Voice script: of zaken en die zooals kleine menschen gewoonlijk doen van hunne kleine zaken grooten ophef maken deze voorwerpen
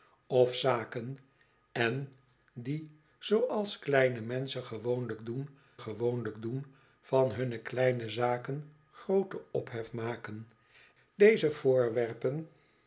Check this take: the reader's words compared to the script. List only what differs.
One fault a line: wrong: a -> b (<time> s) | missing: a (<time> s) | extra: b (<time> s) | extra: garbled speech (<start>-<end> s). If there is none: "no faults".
extra: gewoonlijk doen (5.8 s)